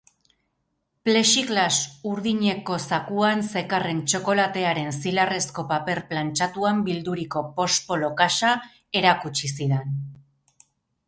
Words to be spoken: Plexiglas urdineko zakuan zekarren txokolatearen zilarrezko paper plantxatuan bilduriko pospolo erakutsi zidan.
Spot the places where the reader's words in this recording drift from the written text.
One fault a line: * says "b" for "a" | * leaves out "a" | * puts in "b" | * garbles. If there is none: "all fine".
* puts in "kaxa"